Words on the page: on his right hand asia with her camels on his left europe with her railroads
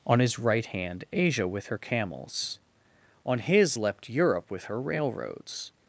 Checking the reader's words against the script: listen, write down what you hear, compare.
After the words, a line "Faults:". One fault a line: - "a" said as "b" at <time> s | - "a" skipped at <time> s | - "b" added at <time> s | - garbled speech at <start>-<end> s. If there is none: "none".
on his right hand asia with her camels on his leapt europe with her railroads
Faults:
- "left" said as "leapt" at 3.8 s